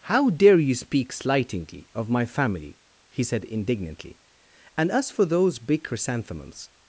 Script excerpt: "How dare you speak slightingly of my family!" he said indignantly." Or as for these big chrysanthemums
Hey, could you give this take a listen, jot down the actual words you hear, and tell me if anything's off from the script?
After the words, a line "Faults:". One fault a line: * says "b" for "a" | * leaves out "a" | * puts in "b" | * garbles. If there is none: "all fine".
"How dare you speak slightingly of my family!" he said indignantly." And as for those big chrysanthemums
Faults:
* says "And" for "Or"
* says "those" for "these"